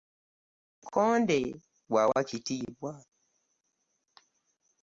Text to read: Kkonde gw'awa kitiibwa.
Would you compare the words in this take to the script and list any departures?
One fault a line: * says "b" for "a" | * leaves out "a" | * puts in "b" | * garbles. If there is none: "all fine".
all fine